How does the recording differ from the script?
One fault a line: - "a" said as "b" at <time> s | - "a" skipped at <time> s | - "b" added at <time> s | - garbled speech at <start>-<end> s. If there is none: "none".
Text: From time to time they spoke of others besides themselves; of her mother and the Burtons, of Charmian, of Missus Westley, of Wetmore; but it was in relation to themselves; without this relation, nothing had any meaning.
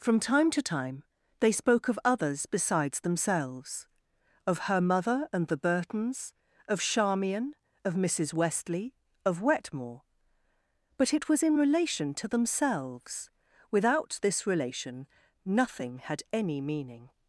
none